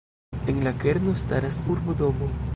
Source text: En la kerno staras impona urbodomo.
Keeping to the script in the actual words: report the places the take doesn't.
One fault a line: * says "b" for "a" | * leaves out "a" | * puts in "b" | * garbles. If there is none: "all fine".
* leaves out "impona"